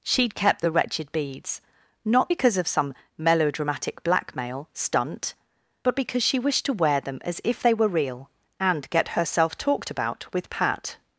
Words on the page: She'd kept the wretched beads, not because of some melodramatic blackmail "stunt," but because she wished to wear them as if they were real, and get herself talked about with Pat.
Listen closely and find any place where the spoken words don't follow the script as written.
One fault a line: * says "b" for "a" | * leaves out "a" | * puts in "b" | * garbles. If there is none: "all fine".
all fine